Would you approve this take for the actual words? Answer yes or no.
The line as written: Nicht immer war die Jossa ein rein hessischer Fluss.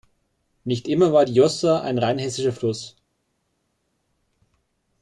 yes